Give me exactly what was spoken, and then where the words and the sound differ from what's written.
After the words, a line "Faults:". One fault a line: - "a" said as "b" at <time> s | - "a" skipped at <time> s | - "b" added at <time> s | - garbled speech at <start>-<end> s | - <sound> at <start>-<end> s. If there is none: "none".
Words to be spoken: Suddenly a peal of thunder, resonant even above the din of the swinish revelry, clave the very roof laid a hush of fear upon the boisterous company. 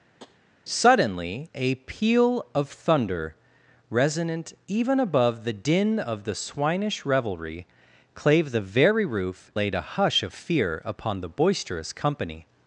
Suddenly a peal of thunder, resonant even above the din of the swinish revelry, clave the very roof laid a hush of fear upon the boisterous company.
Faults:
- tap at 0.2-0.4 s